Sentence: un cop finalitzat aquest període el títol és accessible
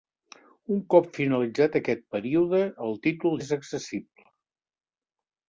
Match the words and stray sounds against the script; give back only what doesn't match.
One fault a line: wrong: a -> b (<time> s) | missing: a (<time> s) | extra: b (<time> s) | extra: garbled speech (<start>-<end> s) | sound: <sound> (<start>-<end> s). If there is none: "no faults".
no faults